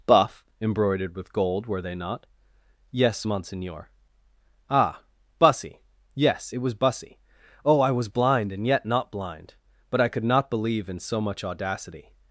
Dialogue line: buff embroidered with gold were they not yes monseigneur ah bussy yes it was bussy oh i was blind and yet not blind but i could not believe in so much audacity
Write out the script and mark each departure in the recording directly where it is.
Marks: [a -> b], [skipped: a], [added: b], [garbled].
buff embroidered with gold were they not yes monseigneur ah bussy yes it was bussy oh i was blind and yet not blind but i could not believe in so much audacity